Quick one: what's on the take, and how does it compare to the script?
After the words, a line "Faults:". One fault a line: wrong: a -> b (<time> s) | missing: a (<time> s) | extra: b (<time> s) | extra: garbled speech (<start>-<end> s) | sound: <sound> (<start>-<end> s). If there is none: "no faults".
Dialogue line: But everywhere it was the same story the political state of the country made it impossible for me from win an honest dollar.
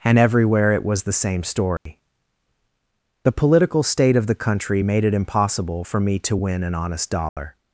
And everywhere it was the same story the political state of the country made it impossible for me to win an honest dollar.
Faults:
wrong: But -> And (0.0 s)
sound: dropout (1.8-1.9 s)
wrong: from -> to (6.2 s)
sound: dropout (7.3-7.4 s)